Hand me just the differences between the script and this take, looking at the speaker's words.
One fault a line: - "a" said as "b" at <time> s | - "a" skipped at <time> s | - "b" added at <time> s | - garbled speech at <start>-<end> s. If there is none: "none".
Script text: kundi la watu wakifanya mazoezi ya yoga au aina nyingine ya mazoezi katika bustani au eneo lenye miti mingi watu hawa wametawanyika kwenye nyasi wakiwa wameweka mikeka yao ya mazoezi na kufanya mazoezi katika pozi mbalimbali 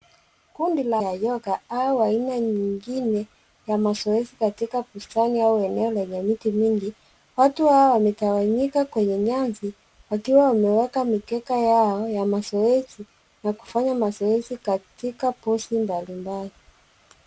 - "watu wakifanya mazoezi" skipped at 1.0 s